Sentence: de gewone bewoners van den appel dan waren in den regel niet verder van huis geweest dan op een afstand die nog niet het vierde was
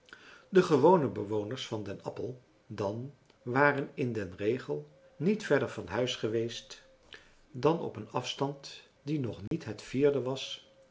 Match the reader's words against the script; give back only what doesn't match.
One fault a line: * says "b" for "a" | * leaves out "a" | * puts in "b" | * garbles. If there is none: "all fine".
all fine